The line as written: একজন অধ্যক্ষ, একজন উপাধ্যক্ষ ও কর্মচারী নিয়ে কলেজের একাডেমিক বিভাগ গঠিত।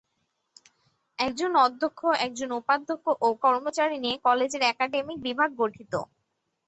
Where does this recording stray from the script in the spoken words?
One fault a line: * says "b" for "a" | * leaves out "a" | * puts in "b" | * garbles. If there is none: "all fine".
all fine